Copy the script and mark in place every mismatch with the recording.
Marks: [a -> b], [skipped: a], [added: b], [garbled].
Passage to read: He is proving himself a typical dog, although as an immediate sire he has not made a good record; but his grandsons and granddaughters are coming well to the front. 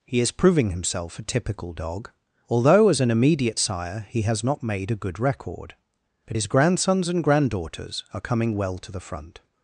He is proving himself a typical dog, although as an immediate sire he has not made a good record; but his grandsons and granddaughters are coming well to the front.